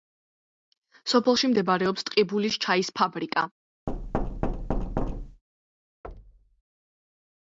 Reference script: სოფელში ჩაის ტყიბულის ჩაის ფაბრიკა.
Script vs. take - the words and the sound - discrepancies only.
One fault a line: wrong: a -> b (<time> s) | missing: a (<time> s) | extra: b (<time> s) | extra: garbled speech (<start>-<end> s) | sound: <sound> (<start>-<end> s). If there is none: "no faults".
wrong: ჩაის -> მდებარეობს (1.5 s)
sound: thud (3.9-5.4 s)
sound: thud (6.0-6.6 s)